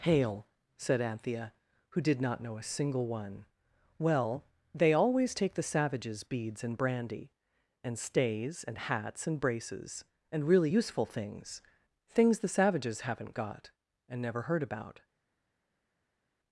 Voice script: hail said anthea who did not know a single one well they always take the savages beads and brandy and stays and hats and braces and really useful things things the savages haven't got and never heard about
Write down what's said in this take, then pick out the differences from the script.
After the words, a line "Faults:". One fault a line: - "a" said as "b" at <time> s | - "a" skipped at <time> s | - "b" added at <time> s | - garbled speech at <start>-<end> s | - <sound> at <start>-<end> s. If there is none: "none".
hail said anthea who did not know a single one well they always take the savages beads and brandy and stays and hats and braces and really useful things things the savages haven't got and never heard about
Faults:
none